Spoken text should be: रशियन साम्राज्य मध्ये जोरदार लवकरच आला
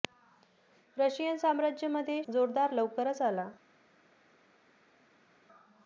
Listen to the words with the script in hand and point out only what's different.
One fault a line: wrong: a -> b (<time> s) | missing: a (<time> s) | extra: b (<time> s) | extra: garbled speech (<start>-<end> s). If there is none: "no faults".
no faults